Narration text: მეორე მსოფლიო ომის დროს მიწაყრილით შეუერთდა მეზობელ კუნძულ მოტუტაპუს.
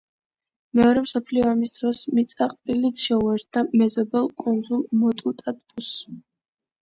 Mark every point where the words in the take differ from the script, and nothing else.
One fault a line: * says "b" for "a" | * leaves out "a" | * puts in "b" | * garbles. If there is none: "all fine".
all fine